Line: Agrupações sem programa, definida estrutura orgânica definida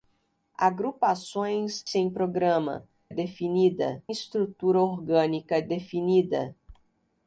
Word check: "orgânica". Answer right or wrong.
right